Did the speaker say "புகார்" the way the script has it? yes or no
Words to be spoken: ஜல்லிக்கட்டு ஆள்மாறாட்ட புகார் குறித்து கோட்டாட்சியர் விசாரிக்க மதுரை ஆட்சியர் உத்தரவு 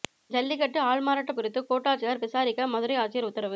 no